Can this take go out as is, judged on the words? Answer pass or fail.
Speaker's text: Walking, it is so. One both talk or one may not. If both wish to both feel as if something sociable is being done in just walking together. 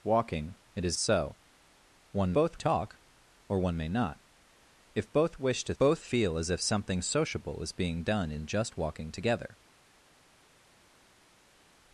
pass